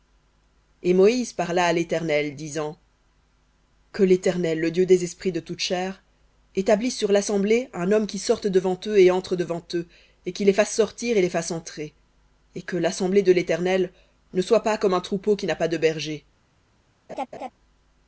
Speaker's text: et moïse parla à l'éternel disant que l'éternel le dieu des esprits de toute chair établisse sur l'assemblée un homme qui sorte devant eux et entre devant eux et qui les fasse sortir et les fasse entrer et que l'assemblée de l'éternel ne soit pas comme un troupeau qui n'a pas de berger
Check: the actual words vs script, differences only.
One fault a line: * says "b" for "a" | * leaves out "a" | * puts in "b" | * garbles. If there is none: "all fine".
all fine